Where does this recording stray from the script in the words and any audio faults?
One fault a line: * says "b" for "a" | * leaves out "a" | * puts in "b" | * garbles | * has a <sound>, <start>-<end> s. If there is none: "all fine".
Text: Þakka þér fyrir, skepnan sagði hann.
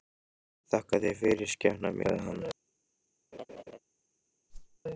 * has a laugh, 3.3-3.8 s
* has a whoosh, 4.5-4.8 s